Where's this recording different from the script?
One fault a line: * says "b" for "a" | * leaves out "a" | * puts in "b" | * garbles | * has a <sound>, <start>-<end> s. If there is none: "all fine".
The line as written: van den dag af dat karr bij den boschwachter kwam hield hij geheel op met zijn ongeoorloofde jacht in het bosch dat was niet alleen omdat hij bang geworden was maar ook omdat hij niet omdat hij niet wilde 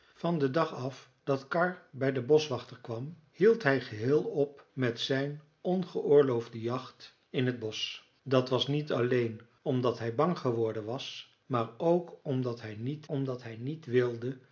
all fine